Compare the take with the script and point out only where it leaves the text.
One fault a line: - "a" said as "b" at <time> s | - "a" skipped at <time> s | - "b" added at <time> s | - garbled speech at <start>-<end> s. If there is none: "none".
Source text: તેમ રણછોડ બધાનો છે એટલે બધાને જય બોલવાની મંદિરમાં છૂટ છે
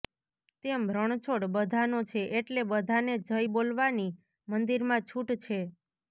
none